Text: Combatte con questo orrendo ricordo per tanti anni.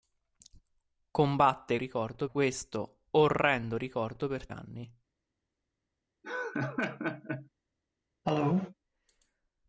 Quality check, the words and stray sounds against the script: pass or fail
fail